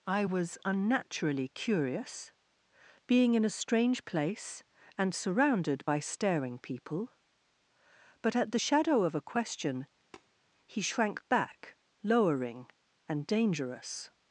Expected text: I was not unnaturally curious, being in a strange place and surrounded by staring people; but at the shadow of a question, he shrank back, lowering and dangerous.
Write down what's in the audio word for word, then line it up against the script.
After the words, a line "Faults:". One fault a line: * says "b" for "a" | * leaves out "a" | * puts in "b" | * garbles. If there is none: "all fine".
I was unnaturally curious, being in a strange place and surrounded by staring people; but at the shadow of a question, he shrank back, lowering and dangerous.
Faults:
* leaves out "not"